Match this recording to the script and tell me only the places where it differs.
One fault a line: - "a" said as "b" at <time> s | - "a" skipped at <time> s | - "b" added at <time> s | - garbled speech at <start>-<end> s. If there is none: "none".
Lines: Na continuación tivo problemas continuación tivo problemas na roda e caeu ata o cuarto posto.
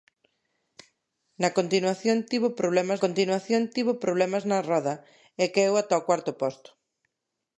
none